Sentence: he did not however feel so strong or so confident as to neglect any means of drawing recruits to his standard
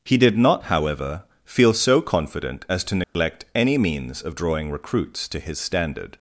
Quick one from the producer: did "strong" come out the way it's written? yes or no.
no